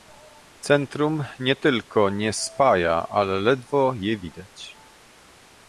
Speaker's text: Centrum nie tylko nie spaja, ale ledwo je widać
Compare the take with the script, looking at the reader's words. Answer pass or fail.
pass